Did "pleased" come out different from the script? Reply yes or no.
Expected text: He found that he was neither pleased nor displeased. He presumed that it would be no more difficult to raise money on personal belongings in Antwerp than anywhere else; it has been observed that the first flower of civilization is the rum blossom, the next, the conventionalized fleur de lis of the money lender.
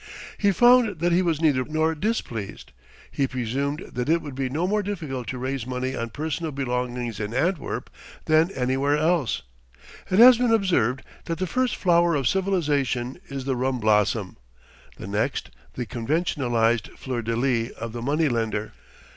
yes